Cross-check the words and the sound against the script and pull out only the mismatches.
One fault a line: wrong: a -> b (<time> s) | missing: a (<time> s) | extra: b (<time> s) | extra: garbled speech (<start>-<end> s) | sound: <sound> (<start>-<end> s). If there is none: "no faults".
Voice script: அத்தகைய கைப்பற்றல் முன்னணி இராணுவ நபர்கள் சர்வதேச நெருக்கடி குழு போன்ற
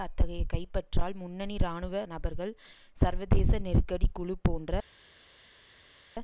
no faults